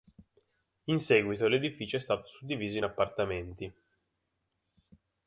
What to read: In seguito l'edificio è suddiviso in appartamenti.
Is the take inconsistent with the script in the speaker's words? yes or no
yes